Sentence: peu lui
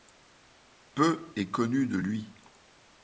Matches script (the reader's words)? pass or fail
fail